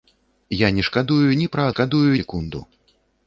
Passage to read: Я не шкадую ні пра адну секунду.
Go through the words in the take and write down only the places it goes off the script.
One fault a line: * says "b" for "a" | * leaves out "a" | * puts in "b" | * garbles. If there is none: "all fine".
* says "шкадую" for "адну"